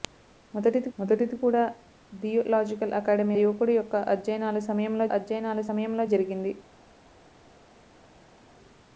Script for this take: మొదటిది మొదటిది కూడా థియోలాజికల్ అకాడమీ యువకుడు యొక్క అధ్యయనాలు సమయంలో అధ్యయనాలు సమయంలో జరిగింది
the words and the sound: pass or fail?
pass